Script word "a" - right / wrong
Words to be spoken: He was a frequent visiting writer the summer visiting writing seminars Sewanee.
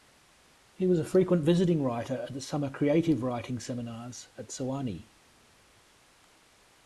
right